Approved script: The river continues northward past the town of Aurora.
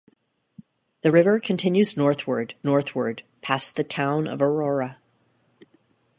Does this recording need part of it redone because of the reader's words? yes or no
yes